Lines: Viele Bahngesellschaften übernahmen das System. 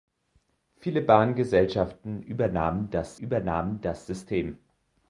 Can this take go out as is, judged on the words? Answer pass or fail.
fail